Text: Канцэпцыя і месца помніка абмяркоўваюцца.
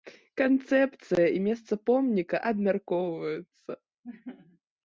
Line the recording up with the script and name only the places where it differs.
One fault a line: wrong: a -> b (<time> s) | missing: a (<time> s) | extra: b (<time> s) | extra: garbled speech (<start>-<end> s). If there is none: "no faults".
no faults